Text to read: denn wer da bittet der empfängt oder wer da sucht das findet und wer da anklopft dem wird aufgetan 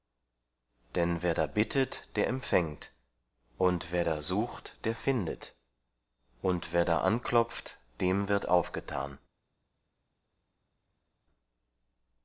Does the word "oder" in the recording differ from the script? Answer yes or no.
yes